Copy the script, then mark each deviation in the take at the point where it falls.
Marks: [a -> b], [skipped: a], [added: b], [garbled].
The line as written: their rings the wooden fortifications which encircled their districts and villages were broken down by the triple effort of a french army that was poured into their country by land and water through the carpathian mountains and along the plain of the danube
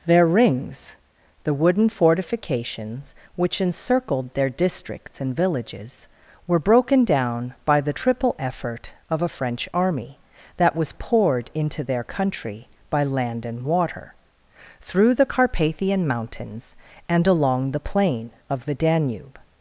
their rings the wooden fortifications which encircled their districts and villages were broken down by the triple effort of a french army that was poured into their country by land and water through the carpathian mountains and along the plain of the danube